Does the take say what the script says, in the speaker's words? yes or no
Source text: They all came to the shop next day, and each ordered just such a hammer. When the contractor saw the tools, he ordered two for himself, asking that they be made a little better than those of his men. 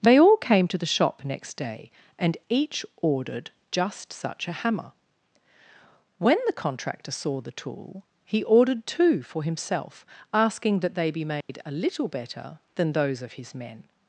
no